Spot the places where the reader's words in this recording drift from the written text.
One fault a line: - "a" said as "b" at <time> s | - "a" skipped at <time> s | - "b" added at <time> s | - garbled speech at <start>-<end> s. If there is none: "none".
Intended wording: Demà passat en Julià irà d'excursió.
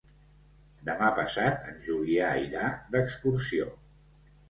none